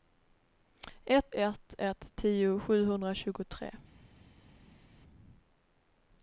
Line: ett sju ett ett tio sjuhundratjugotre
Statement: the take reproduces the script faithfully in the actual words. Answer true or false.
false